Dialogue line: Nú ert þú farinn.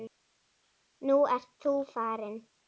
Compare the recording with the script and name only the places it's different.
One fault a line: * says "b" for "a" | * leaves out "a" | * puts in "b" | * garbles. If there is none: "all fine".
all fine